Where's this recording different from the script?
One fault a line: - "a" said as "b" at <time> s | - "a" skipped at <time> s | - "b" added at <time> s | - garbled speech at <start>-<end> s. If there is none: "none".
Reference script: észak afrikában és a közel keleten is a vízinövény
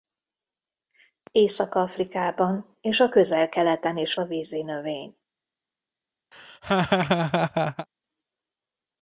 none